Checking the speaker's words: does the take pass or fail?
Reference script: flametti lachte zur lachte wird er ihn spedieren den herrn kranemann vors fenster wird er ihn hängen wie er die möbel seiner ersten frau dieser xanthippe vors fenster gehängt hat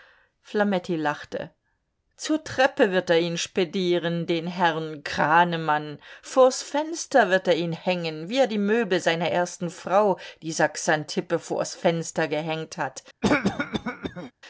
fail